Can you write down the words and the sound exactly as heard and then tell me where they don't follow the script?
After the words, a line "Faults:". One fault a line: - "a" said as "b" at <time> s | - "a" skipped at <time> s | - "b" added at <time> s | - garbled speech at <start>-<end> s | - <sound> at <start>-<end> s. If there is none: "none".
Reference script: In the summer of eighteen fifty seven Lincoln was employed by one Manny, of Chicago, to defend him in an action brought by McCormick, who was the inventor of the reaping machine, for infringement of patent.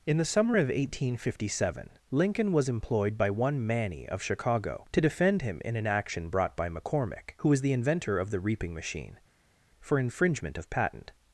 In the summer of eighteen fifty seven Lincoln was employed by one Manny, of Chicago, to defend him in an action brought by McCormick, who was the inventor of the reaping machine, for infringement of patent.
Faults:
none